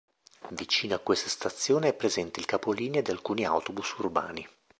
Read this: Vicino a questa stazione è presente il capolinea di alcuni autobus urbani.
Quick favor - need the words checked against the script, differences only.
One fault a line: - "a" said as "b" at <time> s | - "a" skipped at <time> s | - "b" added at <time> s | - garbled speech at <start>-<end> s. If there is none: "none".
none